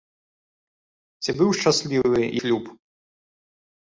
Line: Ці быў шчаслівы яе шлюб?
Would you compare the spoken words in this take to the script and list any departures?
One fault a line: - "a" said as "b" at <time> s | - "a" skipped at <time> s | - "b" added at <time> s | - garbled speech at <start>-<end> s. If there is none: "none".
- "яе" skipped at 2.2 s